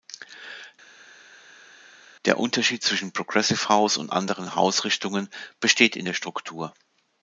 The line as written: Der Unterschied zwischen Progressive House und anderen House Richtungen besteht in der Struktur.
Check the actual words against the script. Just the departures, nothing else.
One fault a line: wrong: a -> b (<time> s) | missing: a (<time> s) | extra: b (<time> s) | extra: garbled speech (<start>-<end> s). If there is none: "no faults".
no faults